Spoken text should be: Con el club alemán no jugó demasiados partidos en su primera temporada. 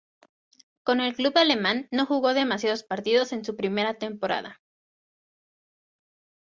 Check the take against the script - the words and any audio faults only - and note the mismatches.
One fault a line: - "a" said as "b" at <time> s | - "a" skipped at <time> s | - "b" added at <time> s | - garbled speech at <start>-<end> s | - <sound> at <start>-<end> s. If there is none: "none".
none